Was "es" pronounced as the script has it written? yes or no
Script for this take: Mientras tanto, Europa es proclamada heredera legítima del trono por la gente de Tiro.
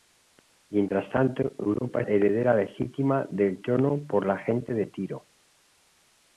no